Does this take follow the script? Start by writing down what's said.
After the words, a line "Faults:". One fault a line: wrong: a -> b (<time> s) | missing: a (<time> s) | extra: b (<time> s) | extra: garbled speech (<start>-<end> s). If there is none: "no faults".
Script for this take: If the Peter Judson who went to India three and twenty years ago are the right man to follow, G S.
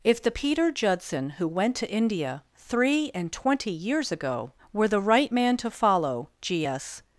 If the Peter Judson who went to India three and twenty years ago were the right man to follow, G S.
Faults:
wrong: are -> were (4.7 s)